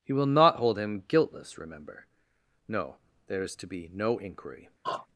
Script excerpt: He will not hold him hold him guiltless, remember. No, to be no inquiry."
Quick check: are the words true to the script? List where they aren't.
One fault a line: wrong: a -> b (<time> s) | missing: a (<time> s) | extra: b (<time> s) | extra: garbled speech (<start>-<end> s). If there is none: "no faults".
missing: hold him (1.0 s)
extra: there is (3.3 s)